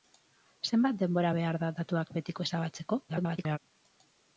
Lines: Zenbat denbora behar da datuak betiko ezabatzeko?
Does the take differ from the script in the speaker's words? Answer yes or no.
yes